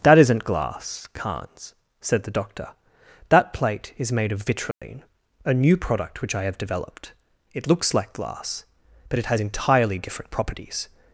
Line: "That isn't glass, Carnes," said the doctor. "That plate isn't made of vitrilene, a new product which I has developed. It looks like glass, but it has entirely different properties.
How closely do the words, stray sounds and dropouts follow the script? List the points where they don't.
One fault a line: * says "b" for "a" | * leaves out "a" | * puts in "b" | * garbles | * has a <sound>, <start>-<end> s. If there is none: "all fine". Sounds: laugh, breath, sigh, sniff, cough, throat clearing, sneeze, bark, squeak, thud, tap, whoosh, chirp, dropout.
* says "is" for "isn't"
* has a dropout, 4.7-4.8 s
* says "have" for "has"